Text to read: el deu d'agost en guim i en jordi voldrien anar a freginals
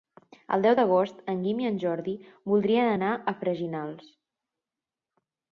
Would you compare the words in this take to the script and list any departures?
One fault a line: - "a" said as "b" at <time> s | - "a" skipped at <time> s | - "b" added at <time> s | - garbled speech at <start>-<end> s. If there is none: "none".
none